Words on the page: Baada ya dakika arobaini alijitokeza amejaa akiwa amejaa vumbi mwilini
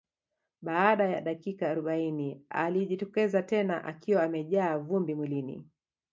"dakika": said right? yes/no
yes